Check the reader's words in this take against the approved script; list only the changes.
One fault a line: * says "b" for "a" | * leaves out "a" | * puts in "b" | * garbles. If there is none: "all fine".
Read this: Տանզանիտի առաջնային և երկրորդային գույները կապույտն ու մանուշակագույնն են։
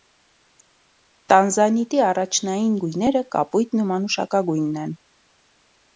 * leaves out "և երկրորդային"